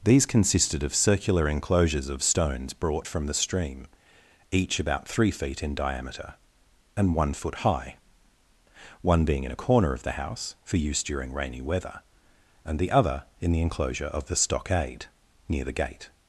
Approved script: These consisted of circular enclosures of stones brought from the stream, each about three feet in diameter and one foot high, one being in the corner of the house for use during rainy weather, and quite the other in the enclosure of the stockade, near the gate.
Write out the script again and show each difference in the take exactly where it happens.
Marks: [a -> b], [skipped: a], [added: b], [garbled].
These consisted of circular enclosures of stones brought from the stream, each about three feet in diameter and one foot high, one being in [the -> a] corner of the house for use during rainy weather, and [skipped: quite] the other in the enclosure of the stockade, near the gate.